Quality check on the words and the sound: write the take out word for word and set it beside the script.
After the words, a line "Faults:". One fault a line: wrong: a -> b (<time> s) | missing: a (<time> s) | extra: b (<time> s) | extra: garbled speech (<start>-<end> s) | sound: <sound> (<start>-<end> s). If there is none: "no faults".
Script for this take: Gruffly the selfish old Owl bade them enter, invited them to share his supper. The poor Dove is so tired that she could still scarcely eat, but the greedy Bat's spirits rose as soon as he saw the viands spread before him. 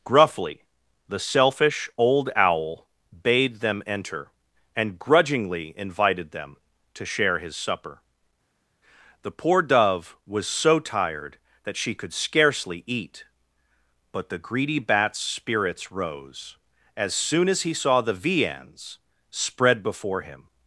Gruffly the selfish old Owl bade them enter, and grudgingly invited them to share his supper. The poor Dove was so tired that she could scarcely eat, but the greedy Bat's spirits rose as soon as he saw the viands spread before him.
Faults:
extra: and grudgingly (4.8 s)
wrong: is -> was (10.2 s)
missing: still (12.1 s)